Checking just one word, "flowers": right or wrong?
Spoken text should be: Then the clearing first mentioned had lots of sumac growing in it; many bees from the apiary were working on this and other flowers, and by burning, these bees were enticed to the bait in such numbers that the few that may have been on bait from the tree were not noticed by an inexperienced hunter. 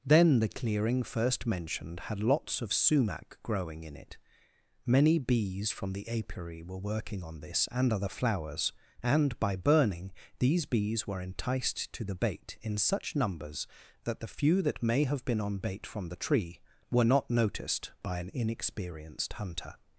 right